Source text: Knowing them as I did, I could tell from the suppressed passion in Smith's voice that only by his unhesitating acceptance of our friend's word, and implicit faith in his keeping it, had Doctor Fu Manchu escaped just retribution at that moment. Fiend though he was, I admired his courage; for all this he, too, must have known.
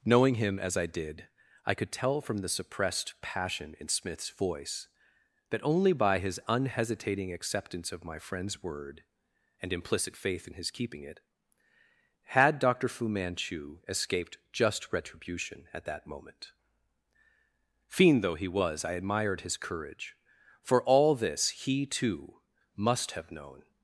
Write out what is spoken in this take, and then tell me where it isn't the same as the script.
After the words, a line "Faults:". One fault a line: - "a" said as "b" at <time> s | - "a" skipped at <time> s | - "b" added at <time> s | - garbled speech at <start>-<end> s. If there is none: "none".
Knowing him as I did, I could tell from the suppressed passion in Smith's voice that only by his unhesitating acceptance of my friend's word, and implicit faith in his keeping it, had Doctor Fu Manchu escaped just retribution at that moment. Fiend though he was, I admired his courage; for all this he, too, must have known.
Faults:
- "them" said as "him" at 0.3 s
- "our" said as "my" at 8.1 s